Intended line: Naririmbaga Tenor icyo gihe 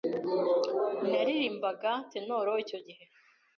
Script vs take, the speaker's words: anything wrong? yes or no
no